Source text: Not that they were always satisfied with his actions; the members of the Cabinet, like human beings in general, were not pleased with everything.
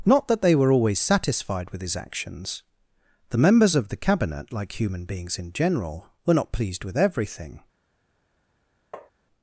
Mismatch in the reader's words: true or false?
false